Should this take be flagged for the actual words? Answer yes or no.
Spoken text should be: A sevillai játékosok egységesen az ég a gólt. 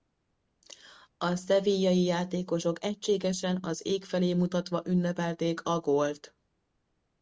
yes